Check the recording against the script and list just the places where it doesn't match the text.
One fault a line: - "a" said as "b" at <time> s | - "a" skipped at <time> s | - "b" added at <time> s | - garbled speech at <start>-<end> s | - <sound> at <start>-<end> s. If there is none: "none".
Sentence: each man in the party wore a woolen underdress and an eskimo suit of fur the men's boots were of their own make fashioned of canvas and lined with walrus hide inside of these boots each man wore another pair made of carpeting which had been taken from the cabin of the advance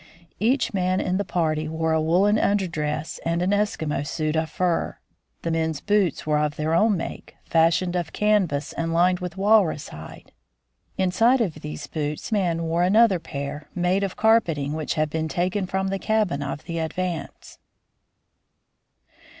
- "each" skipped at 12.3 s